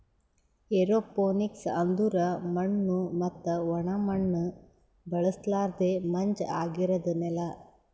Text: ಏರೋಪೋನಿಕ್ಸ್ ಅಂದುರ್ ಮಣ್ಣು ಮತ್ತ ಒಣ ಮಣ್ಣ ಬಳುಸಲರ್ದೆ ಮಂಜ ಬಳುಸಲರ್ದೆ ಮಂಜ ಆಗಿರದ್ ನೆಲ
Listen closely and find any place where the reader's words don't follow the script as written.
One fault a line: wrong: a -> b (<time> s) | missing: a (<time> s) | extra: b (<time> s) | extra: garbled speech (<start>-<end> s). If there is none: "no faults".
missing: ಬಳುಸಲರ್ದೆ ಮಂಜ (6.4 s)